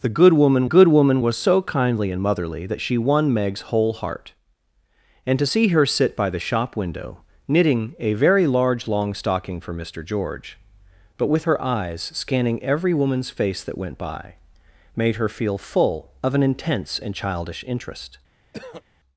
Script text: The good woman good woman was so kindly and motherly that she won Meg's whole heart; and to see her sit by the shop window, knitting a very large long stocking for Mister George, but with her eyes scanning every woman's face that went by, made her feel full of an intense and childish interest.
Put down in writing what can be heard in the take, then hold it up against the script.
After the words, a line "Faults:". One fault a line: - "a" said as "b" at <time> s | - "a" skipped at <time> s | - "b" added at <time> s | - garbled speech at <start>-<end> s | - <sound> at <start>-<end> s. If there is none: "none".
The good woman good woman was so kindly and motherly that she won Meg's whole heart; and to see her sit by the shop window, knitting a very large long stocking for Mister George, but with her eyes scanning every woman's face that went by, made her feel full of an intense and childish interest.
Faults:
- throat clearing at 18.5-18.8 s